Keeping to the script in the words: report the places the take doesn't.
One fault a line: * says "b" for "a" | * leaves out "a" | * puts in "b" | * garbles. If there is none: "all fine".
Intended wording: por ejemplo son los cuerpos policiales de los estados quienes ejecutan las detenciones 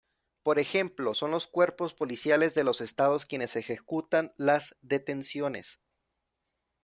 all fine